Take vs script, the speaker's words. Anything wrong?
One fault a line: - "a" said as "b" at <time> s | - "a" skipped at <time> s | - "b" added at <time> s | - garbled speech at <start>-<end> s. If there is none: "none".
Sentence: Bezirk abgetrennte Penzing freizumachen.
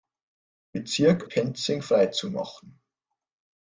- "abgetrennte" skipped at 1.3 s